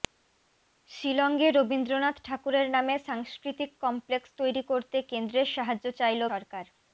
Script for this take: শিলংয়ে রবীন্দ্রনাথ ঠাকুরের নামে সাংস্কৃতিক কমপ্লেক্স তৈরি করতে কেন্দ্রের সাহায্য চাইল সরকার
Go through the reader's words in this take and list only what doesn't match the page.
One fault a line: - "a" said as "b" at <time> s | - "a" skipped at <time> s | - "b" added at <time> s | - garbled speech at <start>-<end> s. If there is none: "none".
none